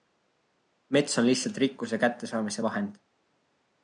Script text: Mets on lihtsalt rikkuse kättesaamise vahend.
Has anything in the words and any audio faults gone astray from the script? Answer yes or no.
no